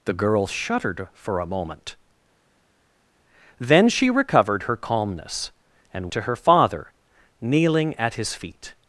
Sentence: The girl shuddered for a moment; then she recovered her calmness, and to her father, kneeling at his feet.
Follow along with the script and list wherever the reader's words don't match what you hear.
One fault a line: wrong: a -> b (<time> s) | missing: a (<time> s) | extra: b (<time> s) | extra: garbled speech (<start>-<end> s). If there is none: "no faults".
no faults